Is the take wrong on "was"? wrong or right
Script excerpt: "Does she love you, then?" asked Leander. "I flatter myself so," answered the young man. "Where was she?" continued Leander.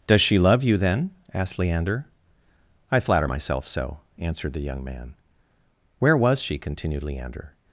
right